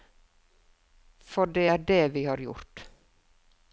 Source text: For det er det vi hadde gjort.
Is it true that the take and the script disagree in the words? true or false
true